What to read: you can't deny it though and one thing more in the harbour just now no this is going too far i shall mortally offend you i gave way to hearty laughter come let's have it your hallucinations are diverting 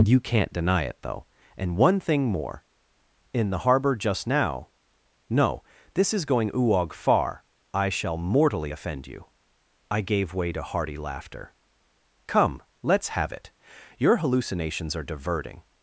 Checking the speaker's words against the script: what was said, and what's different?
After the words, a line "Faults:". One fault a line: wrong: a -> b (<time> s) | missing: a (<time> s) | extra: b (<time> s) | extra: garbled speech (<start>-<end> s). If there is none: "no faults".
you can't deny it though and one thing more in the harbour just now no this is going uog far i shall mortally offend you i gave way to hearty laughter come let's have it your hallucinations are diverting
Faults:
wrong: too -> uog (6.5 s)